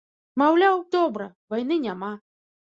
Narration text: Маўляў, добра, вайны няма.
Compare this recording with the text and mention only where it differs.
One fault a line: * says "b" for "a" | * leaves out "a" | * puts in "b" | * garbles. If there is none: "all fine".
all fine